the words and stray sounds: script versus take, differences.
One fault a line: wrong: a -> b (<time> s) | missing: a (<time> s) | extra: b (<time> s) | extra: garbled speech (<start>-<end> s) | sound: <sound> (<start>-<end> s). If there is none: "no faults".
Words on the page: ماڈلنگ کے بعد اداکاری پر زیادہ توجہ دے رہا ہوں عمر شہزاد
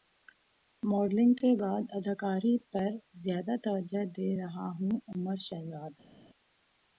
no faults